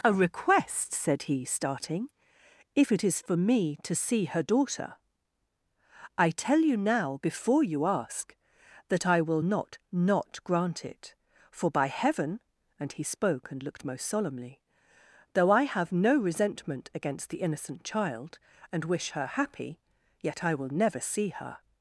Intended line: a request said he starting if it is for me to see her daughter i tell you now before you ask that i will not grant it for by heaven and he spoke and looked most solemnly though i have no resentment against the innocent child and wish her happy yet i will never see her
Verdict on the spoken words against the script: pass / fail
fail